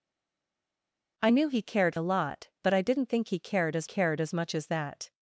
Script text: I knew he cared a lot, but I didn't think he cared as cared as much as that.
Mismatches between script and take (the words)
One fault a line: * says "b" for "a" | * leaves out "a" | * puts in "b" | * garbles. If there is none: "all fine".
all fine